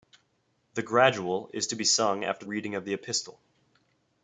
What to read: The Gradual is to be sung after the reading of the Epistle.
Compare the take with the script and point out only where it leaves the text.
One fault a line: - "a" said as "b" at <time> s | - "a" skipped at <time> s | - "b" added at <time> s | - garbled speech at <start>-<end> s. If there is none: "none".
- "the" skipped at 2.4 s